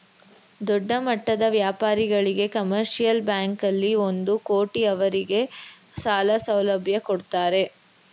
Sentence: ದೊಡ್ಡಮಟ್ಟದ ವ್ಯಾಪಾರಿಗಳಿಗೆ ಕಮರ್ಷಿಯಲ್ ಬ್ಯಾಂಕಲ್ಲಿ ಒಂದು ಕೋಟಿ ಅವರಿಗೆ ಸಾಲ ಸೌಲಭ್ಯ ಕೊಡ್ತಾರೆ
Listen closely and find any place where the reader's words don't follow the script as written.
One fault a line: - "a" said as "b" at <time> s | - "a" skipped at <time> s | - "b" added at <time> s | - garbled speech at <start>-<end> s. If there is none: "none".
none